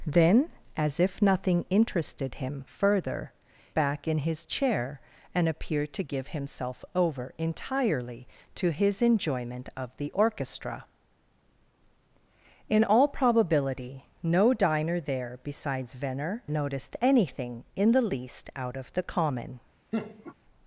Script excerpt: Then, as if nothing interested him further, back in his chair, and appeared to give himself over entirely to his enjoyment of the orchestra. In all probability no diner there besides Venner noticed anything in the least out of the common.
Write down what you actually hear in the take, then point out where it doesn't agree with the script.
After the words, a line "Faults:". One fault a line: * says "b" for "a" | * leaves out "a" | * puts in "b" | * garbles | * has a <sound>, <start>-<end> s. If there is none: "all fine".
Then, as if nothing interested him further, back in his chair, and appeared to give himself over entirely to his enjoyment of the orchestra. In all probability no diner there besides Venner noticed anything in the least out of the common.
Faults:
* has a laugh, 19.9-20.3 s